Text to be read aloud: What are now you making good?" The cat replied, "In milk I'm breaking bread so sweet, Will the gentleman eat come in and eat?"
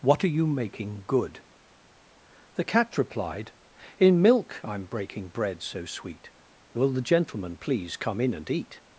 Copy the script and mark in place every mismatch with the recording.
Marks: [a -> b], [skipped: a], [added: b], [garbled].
What are [skipped: now] you making good?" The cat replied, "In milk I'm breaking bread so sweet, Will the gentleman [eat -> please] come in and eat?"